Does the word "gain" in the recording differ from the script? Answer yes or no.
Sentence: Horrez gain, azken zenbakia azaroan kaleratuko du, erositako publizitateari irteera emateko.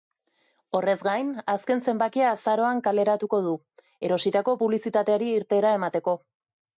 no